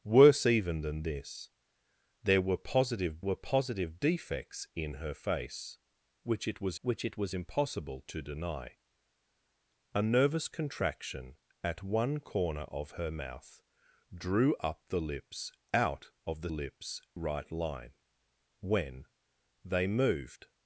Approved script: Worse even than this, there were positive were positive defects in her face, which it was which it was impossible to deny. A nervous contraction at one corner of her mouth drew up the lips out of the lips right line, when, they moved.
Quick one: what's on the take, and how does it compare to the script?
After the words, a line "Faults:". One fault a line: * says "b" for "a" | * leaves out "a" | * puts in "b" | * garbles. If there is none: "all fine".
Worse even than this, there were positive were positive defects in her face, which it was which it was impossible to deny. A nervous contraction at one corner of her mouth drew up the lips out of the lips right line, when, they moved.
Faults:
all fine